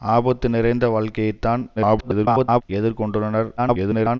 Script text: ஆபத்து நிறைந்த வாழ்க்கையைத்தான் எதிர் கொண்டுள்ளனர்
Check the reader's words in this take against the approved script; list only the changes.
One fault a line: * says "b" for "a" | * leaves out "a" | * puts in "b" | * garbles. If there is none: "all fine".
* garbles
* garbles